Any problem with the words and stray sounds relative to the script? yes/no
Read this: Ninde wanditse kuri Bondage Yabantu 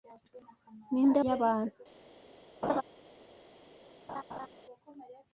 yes